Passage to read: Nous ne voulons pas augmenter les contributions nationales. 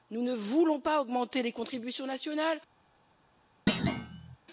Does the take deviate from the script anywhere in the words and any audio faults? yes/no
yes